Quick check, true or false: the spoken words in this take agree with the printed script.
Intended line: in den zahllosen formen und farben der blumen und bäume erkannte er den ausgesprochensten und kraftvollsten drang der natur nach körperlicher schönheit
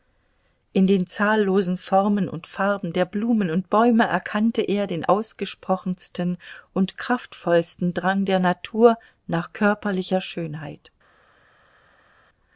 true